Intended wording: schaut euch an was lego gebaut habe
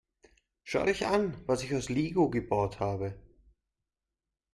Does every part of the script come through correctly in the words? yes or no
no